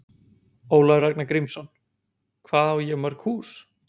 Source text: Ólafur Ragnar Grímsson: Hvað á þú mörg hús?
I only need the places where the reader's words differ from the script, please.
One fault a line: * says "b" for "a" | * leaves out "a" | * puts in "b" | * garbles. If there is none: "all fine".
* says "ég" for "þú"